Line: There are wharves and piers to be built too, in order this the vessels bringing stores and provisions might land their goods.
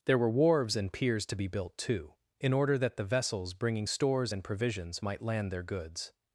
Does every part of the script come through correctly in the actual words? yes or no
no